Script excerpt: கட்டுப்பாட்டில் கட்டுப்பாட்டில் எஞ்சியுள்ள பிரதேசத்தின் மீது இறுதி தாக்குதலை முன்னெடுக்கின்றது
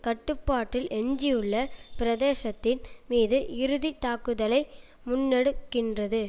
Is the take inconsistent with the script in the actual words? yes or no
yes